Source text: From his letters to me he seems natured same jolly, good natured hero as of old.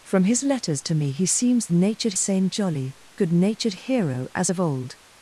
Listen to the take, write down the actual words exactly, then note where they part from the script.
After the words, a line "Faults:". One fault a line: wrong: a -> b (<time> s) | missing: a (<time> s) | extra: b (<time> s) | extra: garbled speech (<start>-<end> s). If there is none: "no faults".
From his letters to me he seems natured same jolly, good natured hero as of old.
Faults:
no faults